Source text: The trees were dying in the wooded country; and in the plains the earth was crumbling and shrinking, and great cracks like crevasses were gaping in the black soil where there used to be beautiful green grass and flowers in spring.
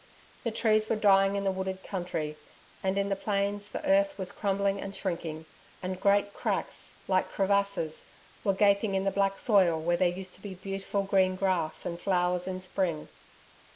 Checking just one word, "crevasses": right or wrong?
right